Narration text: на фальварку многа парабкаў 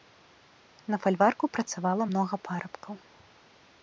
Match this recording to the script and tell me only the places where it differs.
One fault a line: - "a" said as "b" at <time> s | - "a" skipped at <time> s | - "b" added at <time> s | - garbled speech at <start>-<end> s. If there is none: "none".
- "працавала" added at 1.6 s